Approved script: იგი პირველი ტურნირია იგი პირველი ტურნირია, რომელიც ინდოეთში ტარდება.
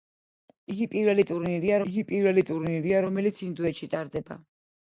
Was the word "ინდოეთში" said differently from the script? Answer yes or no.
no